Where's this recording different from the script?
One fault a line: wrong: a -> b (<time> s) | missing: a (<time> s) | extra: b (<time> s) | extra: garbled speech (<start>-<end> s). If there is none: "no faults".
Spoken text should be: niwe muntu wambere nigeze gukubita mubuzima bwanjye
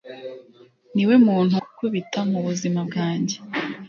missing: wambere nigeze (1.6 s)